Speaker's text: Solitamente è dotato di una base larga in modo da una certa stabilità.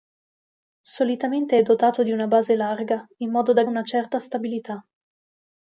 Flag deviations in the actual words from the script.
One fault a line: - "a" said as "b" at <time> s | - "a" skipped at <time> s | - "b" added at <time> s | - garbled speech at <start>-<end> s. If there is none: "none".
none